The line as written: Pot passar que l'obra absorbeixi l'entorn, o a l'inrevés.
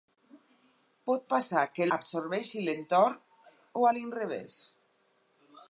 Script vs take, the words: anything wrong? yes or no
yes